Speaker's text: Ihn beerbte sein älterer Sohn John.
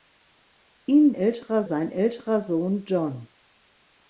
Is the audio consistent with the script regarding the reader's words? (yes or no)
no